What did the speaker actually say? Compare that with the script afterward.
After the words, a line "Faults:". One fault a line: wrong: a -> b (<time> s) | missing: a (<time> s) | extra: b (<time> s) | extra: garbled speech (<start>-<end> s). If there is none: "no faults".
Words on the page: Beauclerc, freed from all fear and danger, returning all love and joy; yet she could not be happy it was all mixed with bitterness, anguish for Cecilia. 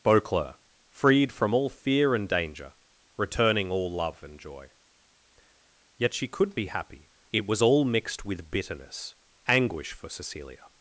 Beauclerc, freed from all fear and danger, returning all love and joy; yet she could be happy it was all mixed with bitterness, anguish for Cecilia.
Faults:
missing: not (6.6 s)